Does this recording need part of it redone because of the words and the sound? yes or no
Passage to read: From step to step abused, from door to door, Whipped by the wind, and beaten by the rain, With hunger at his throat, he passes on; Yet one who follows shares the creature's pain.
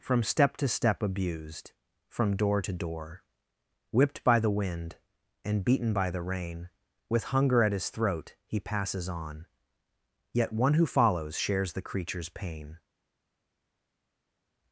no